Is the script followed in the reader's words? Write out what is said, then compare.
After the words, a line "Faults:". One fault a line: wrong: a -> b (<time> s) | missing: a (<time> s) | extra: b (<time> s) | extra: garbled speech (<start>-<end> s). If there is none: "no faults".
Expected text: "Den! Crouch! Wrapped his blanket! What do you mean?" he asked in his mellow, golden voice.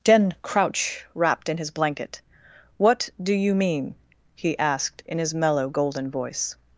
"Den! Crouch! Wrapped in his blanket! What do you mean?" he asked in his mellow, golden voice.
Faults:
extra: in (1.5 s)